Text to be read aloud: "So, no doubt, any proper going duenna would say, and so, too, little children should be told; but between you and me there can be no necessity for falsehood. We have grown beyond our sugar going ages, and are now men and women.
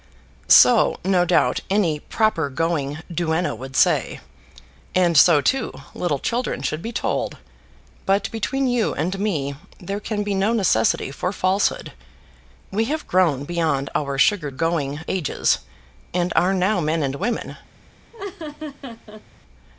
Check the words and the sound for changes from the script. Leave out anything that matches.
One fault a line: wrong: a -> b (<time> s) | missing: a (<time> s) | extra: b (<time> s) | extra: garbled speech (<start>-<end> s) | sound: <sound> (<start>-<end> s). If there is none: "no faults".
sound: laugh (18.1-19.2 s)